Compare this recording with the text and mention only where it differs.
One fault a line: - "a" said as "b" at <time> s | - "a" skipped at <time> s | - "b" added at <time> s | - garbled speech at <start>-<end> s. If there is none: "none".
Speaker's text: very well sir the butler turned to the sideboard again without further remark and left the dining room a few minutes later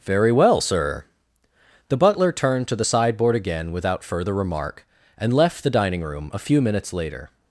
none